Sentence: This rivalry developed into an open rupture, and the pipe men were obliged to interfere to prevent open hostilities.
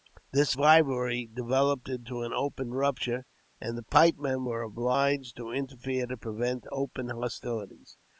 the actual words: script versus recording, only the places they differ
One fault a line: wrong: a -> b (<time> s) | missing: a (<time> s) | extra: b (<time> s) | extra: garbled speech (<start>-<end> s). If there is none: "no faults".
no faults